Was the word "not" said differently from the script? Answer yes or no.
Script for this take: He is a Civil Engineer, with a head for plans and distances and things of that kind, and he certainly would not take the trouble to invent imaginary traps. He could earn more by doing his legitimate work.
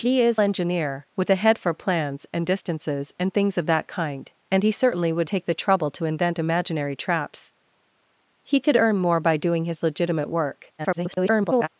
yes